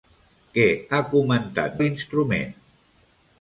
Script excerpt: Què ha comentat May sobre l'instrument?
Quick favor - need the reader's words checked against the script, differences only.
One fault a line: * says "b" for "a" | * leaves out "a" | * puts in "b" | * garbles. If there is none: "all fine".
* leaves out "May sobre"